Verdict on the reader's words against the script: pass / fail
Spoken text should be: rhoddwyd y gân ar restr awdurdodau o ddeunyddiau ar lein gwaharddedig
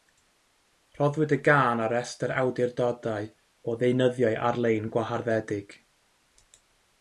pass